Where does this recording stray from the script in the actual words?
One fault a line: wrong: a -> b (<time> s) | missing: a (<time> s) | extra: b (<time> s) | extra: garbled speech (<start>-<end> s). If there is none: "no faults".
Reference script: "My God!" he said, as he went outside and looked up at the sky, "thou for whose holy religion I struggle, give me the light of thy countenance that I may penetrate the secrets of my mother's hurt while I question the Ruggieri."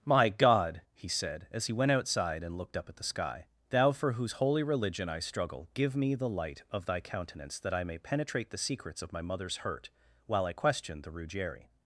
no faults